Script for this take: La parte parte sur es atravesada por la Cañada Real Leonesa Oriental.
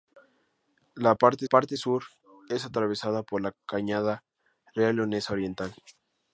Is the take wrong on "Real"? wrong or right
right